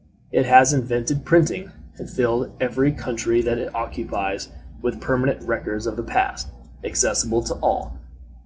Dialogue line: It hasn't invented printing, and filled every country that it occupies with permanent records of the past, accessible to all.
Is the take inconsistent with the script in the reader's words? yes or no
yes